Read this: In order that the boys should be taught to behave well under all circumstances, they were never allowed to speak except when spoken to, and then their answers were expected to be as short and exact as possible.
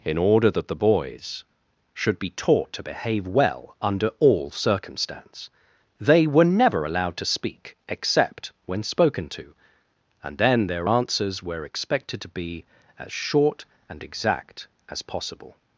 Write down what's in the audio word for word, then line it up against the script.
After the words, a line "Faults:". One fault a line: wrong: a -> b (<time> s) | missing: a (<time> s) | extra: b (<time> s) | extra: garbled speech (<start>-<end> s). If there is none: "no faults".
In order that the boys should be taught to behave well under all circumstance, they were never allowed to speak except when spoken to, and then their answers were expected to be as short and exact as possible.
Faults:
wrong: circumstances -> circumstance (4.5 s)